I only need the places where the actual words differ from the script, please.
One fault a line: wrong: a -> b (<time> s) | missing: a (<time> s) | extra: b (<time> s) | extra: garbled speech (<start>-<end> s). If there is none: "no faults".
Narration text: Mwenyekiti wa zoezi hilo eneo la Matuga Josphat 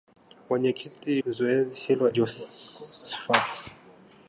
missing: wa (1.2 s)
missing: eneo la Matuga (2.1 s)